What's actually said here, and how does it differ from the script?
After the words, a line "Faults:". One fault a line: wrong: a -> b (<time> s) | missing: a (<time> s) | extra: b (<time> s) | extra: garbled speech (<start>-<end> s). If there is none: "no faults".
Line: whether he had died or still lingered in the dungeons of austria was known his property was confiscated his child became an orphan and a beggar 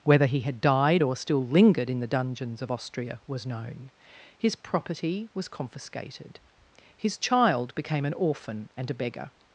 whether he had died or still lingered in the dungeons of austria was known his property was confiscated his child became an orphan and a beggar
Faults:
no faults